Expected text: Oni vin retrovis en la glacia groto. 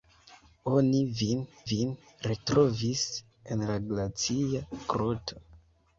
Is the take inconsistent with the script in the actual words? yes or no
yes